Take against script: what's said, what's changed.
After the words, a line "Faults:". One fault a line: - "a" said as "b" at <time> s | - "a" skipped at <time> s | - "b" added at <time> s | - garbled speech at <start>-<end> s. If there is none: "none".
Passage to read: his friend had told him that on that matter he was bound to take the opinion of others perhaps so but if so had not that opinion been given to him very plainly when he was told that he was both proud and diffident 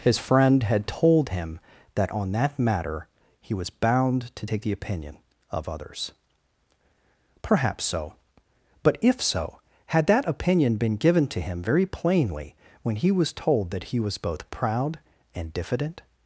his friend had told him that on that matter he was bound to take the opinion of others perhaps so but if so had that opinion been given to him very plainly when he was told that he was both proud and diffident
Faults:
- "not" skipped at 10.1 s